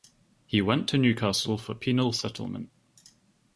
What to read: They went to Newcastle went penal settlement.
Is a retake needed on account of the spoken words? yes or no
yes